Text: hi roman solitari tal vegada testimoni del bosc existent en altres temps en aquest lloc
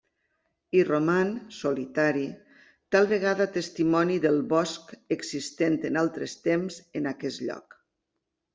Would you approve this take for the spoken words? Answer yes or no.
yes